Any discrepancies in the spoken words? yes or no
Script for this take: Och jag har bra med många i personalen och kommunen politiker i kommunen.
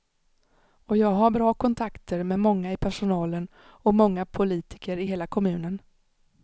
yes